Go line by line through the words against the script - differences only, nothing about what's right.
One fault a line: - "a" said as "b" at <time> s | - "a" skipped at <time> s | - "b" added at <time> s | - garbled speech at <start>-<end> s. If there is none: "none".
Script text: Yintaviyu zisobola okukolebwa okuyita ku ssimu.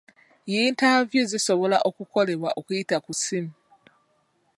none